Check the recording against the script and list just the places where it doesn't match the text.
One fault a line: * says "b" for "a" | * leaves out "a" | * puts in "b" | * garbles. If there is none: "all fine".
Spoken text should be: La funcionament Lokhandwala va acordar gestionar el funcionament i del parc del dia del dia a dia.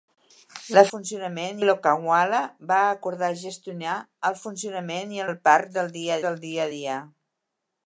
all fine